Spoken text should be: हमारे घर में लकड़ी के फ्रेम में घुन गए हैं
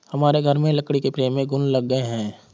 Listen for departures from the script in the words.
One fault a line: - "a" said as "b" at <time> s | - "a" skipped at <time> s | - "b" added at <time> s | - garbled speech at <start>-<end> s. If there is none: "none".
- "लग" added at 1.7 s